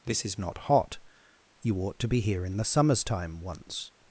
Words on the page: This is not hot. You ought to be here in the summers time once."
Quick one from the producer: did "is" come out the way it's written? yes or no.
yes